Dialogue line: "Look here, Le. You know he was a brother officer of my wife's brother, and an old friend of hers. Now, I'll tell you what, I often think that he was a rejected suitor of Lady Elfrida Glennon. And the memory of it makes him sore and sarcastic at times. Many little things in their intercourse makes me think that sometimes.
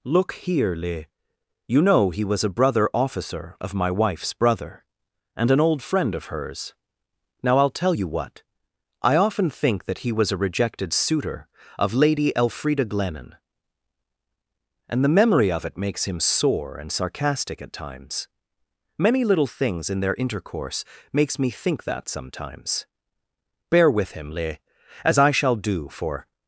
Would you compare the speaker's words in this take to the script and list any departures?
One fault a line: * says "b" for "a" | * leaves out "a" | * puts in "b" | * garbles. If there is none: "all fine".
* puts in "Bear with him Le as I shall do for"